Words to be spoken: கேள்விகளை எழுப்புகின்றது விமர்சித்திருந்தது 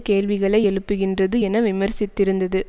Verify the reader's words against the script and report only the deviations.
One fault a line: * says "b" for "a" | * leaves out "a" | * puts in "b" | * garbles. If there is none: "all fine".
* puts in "என"